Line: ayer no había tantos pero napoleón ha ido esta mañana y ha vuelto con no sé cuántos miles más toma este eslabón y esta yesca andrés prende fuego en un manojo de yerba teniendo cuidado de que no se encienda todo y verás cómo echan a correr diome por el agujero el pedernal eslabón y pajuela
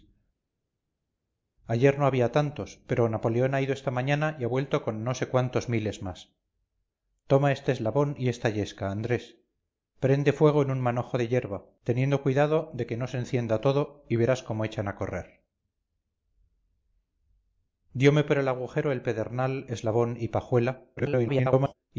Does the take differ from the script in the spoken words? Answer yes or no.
yes